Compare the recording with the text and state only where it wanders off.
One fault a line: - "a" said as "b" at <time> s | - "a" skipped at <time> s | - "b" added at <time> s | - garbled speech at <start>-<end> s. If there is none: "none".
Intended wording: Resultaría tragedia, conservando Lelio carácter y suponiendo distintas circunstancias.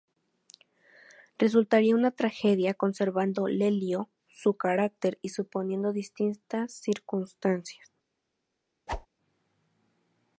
- "una" added at 1.9 s
- "su" added at 4.3 s